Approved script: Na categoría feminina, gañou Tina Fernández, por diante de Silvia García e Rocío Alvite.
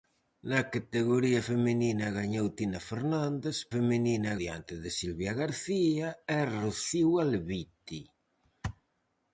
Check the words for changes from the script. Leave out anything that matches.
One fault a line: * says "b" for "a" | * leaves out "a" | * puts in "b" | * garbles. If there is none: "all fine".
* says "feminina" for "por"